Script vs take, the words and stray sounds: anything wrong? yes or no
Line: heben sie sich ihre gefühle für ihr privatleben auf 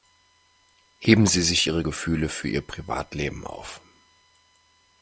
no